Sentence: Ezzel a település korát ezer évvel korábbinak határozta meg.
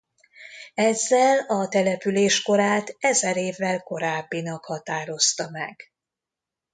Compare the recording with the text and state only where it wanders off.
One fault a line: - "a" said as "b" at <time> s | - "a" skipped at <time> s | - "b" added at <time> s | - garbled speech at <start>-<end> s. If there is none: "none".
none